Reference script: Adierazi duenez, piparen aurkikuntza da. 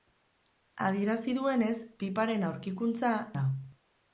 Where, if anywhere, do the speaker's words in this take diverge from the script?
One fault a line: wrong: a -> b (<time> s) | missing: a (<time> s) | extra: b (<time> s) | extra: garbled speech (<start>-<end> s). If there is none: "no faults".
no faults